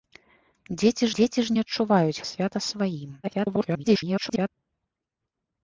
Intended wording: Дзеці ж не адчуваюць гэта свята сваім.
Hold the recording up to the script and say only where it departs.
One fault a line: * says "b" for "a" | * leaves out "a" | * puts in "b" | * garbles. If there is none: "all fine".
* puts in "дзеці"
* leaves out "гэта"
* garbles